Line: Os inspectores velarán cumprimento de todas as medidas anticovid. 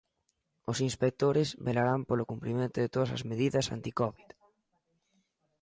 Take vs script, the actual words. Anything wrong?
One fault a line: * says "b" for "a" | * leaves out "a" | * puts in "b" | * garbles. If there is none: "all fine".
* puts in "polo"